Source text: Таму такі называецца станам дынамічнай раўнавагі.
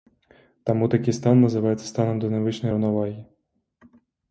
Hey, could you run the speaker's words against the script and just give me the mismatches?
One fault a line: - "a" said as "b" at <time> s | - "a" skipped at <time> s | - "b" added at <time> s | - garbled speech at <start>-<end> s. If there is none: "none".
- "стан" added at 1.2 s